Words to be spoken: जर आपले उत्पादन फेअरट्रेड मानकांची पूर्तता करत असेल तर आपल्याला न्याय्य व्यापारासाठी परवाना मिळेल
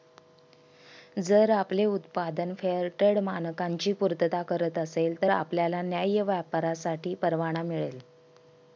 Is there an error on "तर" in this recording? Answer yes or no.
no